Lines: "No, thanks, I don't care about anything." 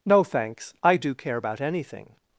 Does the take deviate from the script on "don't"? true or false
true